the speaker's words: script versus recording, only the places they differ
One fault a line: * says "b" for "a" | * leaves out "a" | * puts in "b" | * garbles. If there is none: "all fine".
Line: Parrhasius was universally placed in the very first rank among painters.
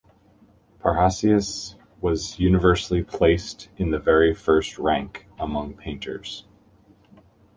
all fine